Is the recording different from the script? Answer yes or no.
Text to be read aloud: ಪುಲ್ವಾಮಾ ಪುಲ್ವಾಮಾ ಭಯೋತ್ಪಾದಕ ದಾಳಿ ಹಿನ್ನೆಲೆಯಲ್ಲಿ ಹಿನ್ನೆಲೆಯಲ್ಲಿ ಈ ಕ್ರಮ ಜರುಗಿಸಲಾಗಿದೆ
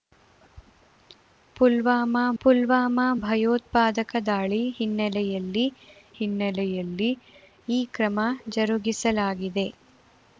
no